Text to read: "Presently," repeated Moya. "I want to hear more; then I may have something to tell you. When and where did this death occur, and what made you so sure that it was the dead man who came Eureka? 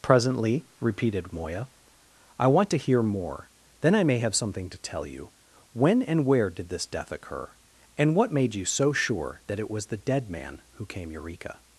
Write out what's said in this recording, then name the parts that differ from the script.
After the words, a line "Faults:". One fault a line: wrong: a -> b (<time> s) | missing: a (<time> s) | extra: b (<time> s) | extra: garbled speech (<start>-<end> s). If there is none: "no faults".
"Presently," repeated Moya. "I want to hear more; then I may have something to tell you. When and where did this death occur, and what made you so sure that it was the dead man who came Eureka?
Faults:
no faults